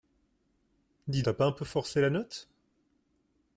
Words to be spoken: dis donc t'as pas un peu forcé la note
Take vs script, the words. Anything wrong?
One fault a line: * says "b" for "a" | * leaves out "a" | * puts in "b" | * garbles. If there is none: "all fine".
* leaves out "donc"